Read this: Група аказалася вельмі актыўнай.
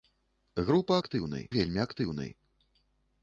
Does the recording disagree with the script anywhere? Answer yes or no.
yes